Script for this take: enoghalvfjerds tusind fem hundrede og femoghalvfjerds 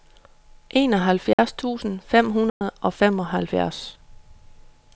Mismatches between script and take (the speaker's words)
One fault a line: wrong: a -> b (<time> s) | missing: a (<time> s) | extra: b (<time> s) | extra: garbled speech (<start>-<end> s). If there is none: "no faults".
no faults